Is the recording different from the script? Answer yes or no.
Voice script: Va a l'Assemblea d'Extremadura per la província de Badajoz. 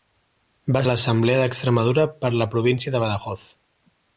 no